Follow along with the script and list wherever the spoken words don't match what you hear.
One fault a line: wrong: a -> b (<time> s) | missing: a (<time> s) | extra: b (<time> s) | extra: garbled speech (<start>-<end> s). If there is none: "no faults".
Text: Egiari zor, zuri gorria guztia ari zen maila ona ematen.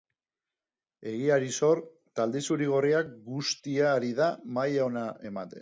extra: talde (2.2 s)
wrong: zen -> da (4.1 s)